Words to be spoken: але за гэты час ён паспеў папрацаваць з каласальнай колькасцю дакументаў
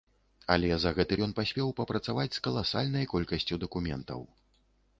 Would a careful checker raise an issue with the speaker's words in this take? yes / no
yes